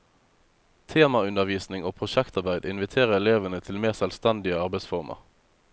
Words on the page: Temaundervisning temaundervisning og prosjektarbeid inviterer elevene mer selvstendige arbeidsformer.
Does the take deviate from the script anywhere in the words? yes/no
yes